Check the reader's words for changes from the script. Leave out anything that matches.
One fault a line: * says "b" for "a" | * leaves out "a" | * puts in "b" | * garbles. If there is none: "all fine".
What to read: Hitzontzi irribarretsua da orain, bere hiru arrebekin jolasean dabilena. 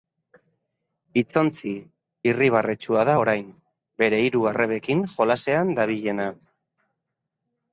all fine